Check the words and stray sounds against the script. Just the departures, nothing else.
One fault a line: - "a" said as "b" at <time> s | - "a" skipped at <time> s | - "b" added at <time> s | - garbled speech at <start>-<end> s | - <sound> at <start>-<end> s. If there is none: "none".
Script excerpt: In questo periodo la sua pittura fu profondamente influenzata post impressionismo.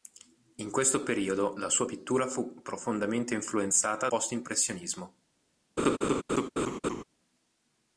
- laugh at 5.8-7.0 s